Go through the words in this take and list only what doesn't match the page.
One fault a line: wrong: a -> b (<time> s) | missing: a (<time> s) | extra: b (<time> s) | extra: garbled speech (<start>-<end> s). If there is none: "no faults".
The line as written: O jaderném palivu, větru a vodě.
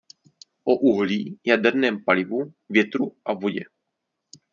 extra: uhlí (0.8 s)